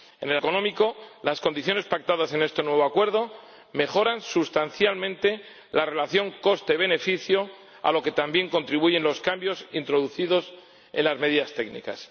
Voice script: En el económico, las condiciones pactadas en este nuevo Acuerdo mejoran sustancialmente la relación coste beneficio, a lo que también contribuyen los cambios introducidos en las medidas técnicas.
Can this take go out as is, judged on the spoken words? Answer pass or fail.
pass